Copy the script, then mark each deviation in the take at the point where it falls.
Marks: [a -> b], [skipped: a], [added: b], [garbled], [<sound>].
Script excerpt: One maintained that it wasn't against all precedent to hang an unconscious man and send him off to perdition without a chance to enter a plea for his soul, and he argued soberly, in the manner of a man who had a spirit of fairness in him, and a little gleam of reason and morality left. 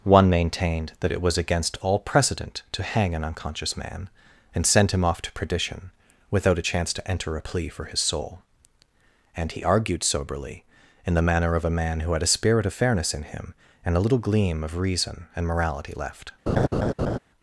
One maintained that it [wasn't -> was] against all precedent to hang an unconscious man and send him off to perdition without a chance to enter a plea for his soul, and he argued soberly, in the manner of a man who had a spirit of fairness in him, and a little gleam of reason and morality left. [laugh]